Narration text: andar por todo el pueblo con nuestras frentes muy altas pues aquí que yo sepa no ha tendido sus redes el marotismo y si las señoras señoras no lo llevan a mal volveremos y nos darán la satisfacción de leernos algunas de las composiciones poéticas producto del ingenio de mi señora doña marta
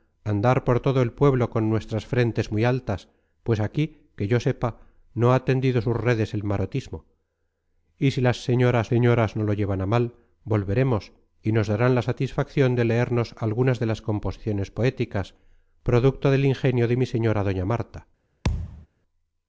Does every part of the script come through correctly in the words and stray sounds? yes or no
no